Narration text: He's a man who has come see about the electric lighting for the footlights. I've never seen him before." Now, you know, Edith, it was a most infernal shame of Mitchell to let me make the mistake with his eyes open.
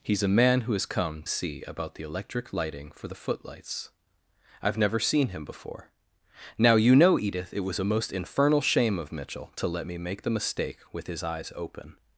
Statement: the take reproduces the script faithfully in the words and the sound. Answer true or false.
true